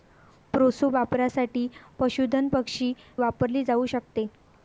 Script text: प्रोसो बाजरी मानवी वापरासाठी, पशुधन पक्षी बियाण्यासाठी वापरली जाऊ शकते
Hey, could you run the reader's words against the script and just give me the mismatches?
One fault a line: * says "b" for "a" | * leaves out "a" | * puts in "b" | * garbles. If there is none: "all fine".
* leaves out "बाजरी मानवी"
* leaves out "बियाण्यासाठी"